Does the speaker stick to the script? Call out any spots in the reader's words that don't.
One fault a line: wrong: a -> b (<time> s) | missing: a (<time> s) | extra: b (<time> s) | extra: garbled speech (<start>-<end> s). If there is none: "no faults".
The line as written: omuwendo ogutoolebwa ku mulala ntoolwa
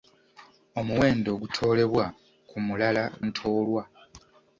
no faults